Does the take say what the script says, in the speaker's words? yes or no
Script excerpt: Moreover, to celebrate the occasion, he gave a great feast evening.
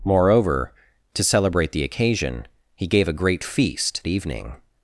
yes